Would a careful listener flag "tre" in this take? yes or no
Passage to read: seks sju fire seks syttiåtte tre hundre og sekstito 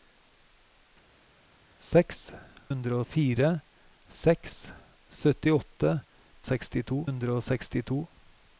yes